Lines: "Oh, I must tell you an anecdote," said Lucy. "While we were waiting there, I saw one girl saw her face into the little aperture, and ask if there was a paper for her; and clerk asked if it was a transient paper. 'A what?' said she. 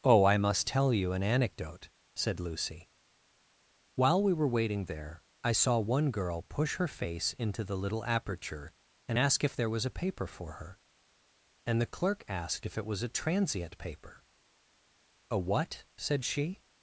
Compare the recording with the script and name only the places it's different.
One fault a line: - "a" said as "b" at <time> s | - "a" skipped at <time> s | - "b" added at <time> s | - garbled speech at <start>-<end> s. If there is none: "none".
- "saw" said as "push" at 6.4 s
- "the" added at 11.8 s